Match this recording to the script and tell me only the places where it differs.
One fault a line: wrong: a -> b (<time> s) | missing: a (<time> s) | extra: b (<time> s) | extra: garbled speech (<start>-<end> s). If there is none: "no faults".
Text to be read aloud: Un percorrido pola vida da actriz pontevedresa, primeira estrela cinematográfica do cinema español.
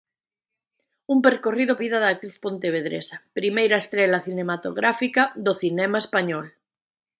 missing: pola (1.7 s)